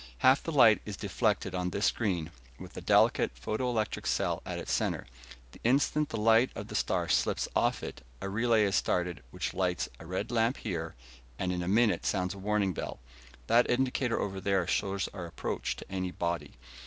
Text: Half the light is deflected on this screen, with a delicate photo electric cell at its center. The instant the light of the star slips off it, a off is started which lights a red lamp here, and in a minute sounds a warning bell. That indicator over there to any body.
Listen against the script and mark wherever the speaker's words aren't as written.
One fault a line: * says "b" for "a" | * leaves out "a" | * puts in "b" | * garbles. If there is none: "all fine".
* says "relay" for "off"
* puts in "shows our approach"